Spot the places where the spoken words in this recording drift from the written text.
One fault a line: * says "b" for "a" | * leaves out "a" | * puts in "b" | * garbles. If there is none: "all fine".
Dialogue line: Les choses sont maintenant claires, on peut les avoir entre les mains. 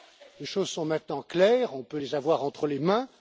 all fine